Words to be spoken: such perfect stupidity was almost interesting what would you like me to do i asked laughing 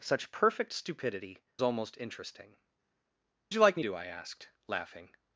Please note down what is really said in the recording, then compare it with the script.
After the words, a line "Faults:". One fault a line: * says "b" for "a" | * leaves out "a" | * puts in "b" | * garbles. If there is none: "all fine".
such perfect stupidity almost interesting you like me do i asked laughing
Faults:
* leaves out "was"
* leaves out "what would"
* leaves out "to"